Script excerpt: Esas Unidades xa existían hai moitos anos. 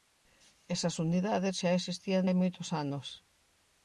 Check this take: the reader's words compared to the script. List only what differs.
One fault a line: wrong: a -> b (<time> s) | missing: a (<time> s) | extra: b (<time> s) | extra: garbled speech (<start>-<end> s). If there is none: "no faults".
no faults